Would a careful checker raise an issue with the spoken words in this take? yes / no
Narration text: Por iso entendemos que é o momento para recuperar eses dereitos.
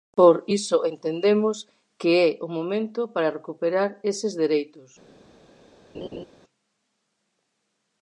no